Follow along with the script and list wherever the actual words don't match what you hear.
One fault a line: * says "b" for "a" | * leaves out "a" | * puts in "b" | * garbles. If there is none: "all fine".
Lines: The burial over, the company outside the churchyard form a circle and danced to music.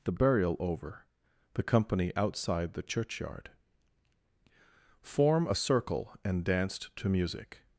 all fine